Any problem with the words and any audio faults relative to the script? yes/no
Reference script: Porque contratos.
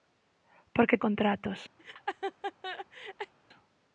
yes